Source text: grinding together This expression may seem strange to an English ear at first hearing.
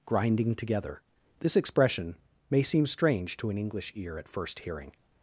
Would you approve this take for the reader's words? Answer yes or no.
yes